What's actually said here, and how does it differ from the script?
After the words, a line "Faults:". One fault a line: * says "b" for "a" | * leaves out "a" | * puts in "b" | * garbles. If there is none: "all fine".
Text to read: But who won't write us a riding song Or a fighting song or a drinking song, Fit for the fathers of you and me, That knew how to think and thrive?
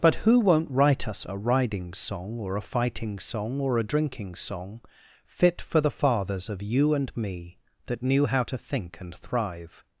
But who won't write us a riding song Or a fighting song or a drinking song, Fit for the fathers of you and me, That knew how to think and thrive?
Faults:
all fine